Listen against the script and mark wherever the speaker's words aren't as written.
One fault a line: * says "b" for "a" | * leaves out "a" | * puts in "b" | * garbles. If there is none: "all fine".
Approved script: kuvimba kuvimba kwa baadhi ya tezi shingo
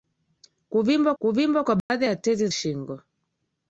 all fine